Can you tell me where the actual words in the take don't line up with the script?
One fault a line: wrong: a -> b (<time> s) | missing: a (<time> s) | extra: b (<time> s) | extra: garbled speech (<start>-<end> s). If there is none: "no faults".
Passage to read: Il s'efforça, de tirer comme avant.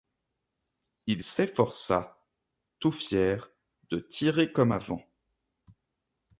extra: tout fier (2.8 s)